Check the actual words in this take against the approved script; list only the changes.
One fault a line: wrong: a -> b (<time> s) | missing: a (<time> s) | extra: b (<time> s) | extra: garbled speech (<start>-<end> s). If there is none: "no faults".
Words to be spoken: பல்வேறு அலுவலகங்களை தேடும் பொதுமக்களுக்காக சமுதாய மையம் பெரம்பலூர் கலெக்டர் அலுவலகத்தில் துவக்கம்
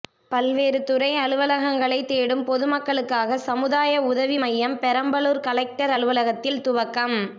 extra: துறை (0.8 s)
extra: உதவி (4.0 s)